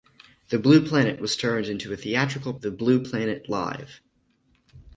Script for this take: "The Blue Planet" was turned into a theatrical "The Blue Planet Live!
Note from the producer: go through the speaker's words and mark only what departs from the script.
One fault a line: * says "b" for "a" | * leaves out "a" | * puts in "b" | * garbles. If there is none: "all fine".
all fine